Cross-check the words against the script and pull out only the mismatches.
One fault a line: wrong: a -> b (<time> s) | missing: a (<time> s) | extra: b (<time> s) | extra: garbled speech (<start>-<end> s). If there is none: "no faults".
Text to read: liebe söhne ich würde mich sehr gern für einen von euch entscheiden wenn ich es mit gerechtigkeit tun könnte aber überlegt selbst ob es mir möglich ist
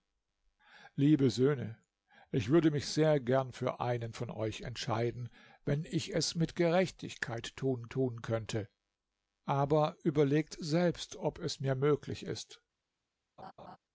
extra: tun (7.9 s)